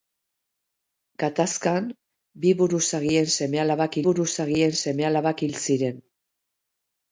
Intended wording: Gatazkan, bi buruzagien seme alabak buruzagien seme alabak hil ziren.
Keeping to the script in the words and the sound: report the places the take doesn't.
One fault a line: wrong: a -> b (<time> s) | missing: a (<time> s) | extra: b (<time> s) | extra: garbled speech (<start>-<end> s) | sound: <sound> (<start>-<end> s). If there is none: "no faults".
no faults